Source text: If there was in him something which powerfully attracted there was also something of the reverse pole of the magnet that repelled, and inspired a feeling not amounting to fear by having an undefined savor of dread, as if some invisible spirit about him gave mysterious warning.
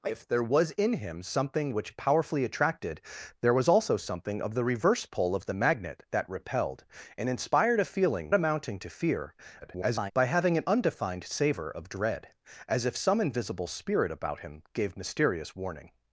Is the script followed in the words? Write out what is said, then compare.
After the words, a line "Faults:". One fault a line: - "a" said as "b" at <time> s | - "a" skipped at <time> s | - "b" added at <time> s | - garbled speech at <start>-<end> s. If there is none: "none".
If there was in him something which powerfully attracted there was also something of the reverse pole of the magnet that repelled, and inspired a feeling amounting to fear [garbled] by having an undefined savor of dread, as if some invisible spirit about him gave mysterious warning.
Faults:
- "not" skipped at 8.3 s
- garbled speech at 9.6-10.1 s